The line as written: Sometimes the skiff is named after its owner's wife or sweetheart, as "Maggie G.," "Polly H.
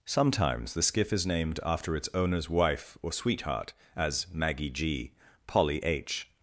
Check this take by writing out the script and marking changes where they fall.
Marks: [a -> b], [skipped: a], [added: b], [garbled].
Sometimes the skiff is named after its owner's wife or sweetheart, as "Maggie G.," "Polly H.